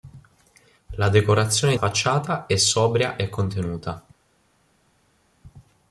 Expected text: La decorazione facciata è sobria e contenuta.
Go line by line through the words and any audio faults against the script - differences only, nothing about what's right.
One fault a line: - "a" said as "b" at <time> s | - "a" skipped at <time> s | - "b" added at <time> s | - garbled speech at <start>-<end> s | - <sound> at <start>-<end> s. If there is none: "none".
none